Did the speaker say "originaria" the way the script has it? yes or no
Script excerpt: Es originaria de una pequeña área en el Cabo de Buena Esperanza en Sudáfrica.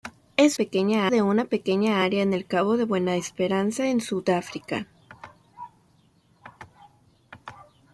no